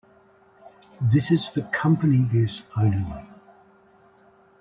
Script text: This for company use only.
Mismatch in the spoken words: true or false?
true